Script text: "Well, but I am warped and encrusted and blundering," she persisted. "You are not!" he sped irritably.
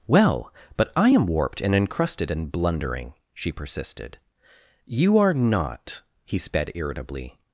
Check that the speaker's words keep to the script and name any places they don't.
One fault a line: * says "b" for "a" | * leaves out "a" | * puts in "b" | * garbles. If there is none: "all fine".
all fine